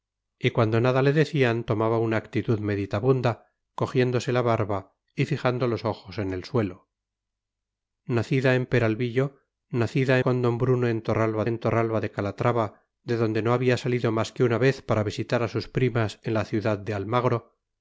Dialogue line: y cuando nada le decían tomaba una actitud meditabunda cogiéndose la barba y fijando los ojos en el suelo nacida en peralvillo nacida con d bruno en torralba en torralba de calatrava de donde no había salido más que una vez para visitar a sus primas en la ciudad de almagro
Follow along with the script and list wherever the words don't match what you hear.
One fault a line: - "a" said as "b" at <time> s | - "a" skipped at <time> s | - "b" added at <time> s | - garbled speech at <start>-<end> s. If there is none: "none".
none